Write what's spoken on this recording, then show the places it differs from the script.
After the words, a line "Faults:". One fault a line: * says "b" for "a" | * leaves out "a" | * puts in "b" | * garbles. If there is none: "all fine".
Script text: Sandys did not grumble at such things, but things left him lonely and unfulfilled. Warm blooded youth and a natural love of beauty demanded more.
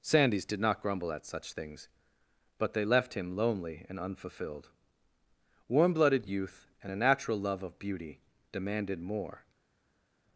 Sandys did not grumble at such things, but they left him lonely and unfulfilled. Warm blooded youth and a natural love of beauty demanded more.
Faults:
* says "they" for "things"